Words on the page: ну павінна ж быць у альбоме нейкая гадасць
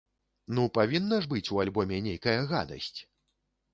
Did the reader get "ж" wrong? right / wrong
right